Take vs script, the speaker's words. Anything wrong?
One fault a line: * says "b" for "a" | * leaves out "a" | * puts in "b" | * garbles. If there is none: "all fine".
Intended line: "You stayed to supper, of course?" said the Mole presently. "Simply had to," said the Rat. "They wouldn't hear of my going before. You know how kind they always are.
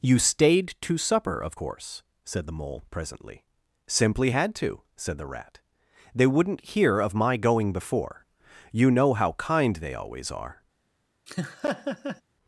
all fine